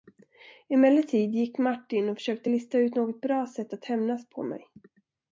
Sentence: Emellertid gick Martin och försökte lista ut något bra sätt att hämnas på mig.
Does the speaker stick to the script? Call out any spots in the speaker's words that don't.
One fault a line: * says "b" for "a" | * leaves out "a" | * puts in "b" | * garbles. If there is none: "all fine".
all fine